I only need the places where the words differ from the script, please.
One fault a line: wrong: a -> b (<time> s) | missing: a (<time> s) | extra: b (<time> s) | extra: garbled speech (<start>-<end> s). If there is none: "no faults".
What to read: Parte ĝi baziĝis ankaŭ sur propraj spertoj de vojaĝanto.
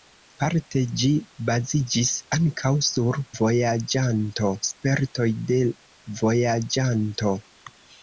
wrong: propraj -> vojaĝanto (3.4 s)